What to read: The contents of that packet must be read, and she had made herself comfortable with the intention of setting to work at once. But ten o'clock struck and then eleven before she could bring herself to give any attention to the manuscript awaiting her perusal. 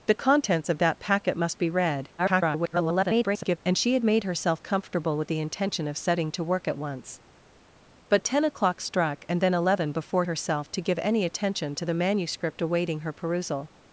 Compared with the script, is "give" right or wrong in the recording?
right